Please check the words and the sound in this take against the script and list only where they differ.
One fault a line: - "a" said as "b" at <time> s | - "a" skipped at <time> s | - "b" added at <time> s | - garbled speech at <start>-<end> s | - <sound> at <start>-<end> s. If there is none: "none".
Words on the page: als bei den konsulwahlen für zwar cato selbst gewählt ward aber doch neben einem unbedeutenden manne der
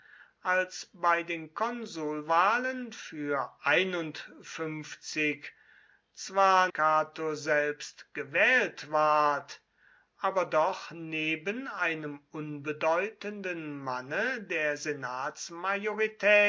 none